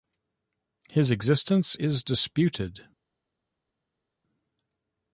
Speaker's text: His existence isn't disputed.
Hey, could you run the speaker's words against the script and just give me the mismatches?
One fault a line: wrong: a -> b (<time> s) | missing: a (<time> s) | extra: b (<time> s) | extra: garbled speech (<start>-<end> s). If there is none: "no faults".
wrong: isn't -> is (1.7 s)